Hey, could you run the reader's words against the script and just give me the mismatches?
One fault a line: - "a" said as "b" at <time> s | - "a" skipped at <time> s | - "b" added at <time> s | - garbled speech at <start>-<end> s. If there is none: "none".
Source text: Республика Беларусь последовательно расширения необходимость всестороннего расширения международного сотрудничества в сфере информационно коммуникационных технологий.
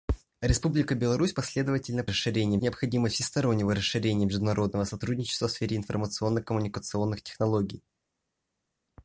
none